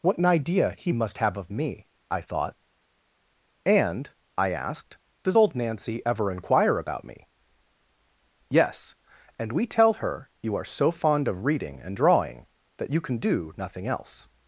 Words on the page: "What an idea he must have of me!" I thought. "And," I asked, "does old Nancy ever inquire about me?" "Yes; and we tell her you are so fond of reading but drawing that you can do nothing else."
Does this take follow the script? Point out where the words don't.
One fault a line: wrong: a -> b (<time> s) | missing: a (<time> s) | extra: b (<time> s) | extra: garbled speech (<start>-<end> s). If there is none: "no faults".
wrong: but -> and (11.8 s)